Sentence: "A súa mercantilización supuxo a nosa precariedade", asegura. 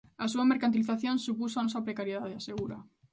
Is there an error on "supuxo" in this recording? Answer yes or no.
no